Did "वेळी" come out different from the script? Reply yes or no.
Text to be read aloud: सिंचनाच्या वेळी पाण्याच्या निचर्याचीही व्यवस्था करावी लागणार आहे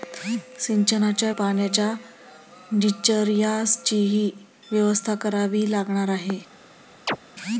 yes